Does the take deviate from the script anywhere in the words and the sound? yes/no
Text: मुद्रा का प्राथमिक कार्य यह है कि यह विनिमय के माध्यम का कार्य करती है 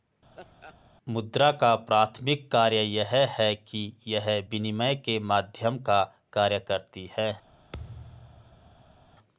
yes